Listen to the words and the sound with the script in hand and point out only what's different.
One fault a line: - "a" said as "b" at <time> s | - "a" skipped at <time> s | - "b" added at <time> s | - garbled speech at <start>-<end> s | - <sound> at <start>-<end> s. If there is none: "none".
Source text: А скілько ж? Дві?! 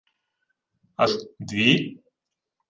- "скілько" skipped at 1.1 s